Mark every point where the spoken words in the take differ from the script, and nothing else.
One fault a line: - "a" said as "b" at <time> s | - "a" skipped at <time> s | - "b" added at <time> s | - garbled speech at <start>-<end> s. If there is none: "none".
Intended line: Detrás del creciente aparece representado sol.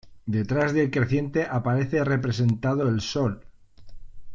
- "el" added at 2.9 s